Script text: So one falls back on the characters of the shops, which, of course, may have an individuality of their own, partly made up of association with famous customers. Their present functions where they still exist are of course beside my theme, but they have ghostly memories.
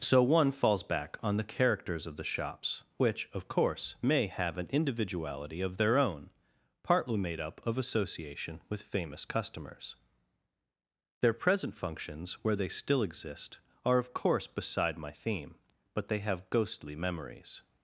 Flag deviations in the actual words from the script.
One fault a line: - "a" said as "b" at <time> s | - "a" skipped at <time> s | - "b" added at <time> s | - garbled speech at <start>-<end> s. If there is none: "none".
none